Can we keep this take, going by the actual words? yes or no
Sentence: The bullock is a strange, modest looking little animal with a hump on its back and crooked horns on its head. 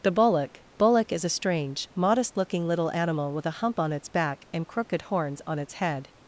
no